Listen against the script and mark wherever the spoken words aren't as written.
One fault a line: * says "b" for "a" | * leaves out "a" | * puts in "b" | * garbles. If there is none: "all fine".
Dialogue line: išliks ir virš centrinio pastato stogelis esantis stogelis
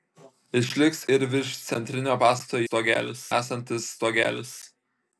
all fine